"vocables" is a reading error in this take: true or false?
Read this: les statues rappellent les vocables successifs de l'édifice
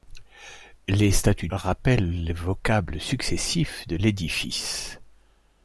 false